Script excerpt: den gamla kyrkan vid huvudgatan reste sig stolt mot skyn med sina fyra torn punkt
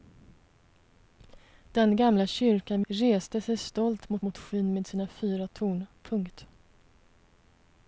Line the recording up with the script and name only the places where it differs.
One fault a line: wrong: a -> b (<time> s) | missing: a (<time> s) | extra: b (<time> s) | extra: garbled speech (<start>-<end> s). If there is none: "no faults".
missing: vid huvudgatan (2.8 s)
extra: mot (4.2 s)